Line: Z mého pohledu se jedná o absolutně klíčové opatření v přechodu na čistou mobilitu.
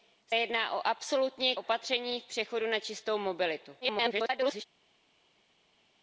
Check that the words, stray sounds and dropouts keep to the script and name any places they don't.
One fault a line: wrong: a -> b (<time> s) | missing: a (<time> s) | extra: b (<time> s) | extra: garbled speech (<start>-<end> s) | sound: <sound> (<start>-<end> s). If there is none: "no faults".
missing: mého pohledu se (0.3 s)
missing: klíčové (1.6 s)
extra: garbled speech (3.8-4.6 s)